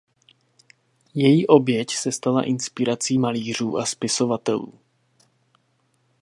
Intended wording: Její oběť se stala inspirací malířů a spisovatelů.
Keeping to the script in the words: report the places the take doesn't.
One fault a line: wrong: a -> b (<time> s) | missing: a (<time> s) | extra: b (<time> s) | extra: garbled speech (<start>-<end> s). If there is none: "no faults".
no faults